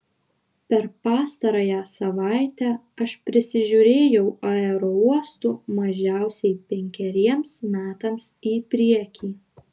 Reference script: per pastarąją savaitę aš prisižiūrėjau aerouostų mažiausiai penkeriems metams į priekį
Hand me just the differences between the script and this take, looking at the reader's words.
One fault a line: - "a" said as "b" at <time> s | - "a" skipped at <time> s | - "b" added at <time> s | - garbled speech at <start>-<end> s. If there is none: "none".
none